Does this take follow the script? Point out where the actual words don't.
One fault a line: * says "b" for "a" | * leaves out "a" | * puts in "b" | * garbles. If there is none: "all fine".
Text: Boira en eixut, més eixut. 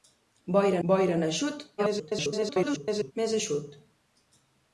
* puts in "boira"
* garbles